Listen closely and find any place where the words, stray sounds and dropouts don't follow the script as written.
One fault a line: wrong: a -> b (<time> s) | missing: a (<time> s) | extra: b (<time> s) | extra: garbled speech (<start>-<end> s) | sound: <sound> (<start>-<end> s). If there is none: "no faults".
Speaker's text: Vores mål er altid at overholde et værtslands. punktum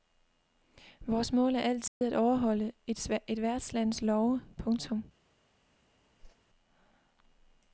sound: dropout (1.9-2.0 s)
extra: love (4.0 s)
sound: whoosh (6.2-6.4 s)